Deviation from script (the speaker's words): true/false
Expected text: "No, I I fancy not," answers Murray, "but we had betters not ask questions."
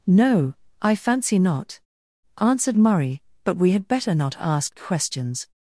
true